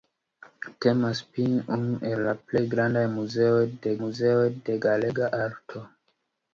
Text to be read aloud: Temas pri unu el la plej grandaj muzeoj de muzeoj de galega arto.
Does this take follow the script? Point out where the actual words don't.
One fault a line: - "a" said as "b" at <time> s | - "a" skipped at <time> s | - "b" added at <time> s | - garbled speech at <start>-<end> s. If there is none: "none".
none